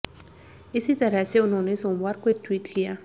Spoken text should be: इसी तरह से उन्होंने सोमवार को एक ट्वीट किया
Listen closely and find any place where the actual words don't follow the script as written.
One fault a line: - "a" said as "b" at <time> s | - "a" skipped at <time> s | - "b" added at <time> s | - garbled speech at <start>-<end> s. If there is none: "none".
none